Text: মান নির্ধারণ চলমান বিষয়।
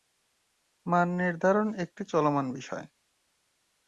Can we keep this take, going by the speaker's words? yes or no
no